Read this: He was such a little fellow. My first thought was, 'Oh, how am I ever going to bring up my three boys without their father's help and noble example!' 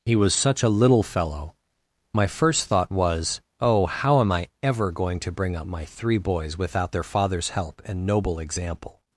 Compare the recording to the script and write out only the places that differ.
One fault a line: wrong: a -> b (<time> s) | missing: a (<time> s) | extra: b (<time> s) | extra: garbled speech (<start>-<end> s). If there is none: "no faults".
no faults